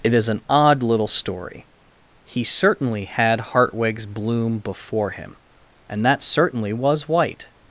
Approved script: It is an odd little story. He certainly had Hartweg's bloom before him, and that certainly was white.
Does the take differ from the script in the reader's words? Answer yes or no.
no